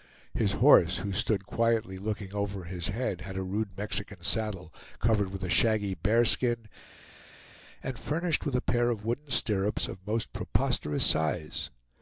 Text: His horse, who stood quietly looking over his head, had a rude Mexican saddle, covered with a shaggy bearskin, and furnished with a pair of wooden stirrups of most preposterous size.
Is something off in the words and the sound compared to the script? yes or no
no